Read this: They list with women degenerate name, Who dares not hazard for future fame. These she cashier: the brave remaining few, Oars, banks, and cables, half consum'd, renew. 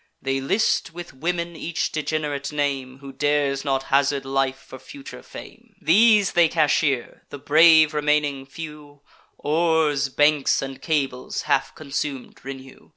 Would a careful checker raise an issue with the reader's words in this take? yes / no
yes